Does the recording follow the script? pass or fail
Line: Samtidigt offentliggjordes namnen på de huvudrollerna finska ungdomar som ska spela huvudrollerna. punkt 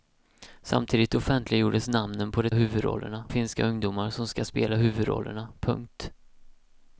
pass